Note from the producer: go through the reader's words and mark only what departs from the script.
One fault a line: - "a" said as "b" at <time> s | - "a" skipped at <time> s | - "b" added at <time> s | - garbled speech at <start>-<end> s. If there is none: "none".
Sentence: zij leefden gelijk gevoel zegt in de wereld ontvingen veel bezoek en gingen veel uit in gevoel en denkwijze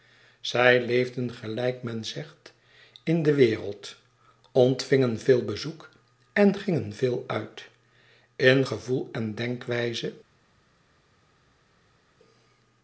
- "gevoel" said as "men" at 1.8 s